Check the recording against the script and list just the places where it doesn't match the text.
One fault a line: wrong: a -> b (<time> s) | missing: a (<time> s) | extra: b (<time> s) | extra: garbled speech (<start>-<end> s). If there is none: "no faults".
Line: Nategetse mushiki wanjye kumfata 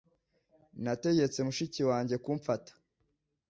no faults